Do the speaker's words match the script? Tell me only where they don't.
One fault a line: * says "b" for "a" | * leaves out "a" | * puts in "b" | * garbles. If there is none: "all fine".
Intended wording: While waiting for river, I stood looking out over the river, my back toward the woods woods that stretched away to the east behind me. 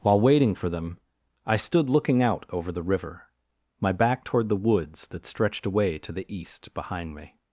* says "them" for "river"
* leaves out "woods"